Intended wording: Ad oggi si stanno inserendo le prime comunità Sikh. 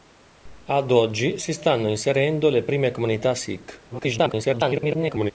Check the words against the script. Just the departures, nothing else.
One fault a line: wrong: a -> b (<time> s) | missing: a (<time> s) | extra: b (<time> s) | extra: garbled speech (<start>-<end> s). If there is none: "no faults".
extra: garbled speech (3.9-5.3 s)